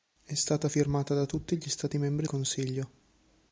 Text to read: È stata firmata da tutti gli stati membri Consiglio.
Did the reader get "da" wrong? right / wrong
right